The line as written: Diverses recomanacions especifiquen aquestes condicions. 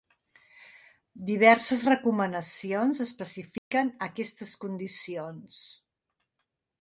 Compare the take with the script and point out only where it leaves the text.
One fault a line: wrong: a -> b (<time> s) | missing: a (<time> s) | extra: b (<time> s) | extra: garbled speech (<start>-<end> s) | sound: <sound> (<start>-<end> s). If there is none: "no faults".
sound: dropout (3.6-3.7 s)